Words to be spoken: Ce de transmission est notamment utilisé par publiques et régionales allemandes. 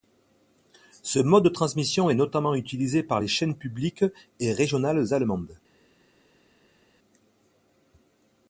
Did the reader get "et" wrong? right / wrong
right